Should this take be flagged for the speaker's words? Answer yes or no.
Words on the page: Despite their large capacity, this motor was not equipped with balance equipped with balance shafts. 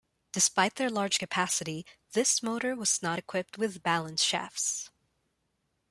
yes